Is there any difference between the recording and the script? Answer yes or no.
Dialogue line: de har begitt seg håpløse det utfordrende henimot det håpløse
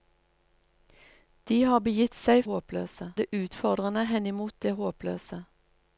no